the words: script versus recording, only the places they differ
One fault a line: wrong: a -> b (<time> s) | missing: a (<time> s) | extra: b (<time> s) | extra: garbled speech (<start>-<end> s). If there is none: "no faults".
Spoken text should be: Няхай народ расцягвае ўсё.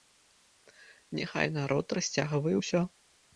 no faults